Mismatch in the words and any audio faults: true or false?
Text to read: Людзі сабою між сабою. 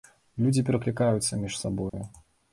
true